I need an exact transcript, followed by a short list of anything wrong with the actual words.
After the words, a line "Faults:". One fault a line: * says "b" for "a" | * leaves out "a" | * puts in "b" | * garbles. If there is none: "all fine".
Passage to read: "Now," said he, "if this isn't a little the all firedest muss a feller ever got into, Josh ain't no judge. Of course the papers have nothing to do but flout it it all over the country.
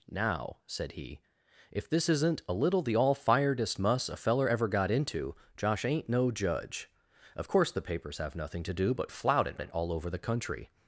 "Now," said he, "if this isn't a little the all firedest muss a feller ever got into, Josh ain't no judge. Of course the papers have nothing to do but flout it it all over the country.
Faults:
all fine